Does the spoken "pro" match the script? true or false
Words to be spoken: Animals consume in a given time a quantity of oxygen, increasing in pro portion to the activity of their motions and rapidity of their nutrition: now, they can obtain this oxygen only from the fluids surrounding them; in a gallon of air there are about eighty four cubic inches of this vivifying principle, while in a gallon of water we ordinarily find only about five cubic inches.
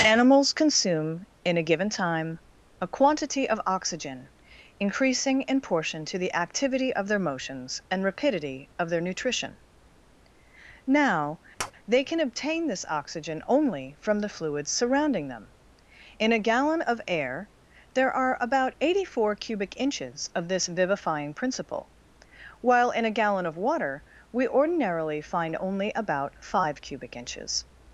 false